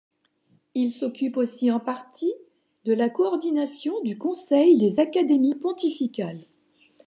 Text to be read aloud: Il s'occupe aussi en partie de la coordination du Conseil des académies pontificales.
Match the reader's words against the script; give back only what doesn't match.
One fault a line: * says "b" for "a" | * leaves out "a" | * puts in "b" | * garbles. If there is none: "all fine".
all fine